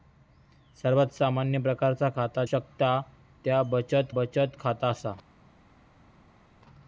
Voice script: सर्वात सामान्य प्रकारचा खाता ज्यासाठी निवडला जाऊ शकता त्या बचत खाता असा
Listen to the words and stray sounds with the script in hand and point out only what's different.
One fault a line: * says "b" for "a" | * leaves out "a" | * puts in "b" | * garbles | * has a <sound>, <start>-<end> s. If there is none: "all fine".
* leaves out "ज्यासाठी निवडला जाऊ"
* puts in "बचत"